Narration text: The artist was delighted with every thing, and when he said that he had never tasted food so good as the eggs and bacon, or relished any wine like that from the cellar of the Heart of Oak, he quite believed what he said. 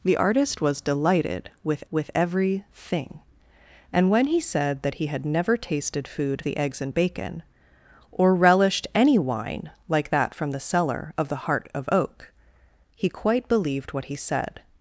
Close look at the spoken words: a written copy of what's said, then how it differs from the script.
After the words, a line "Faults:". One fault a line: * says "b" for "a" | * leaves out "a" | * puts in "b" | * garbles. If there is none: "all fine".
The artist was delighted with with every thing, and when he said that he had never tasted food the eggs and bacon, or relished any wine like that from the cellar of the Heart of Oak, he quite believed what he said.
Faults:
* puts in "with"
* leaves out "so good as"